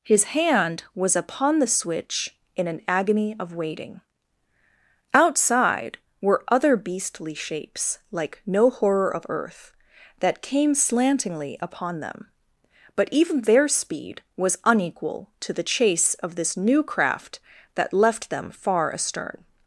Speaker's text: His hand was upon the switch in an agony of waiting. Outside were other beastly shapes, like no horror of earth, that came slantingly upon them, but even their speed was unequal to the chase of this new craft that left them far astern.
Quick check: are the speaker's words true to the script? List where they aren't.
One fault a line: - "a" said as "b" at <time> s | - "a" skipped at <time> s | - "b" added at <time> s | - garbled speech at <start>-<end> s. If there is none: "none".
none